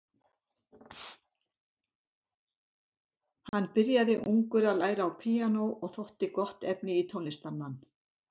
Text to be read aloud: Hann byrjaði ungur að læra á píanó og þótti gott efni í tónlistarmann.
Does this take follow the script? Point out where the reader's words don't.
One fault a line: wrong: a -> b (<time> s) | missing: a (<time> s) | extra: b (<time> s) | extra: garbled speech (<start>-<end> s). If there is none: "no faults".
no faults